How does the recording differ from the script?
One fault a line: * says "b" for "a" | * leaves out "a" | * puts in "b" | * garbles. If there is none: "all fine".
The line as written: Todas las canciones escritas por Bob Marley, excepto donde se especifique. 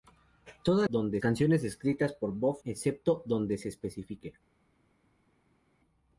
* says "donde" for "las"
* leaves out "Marley"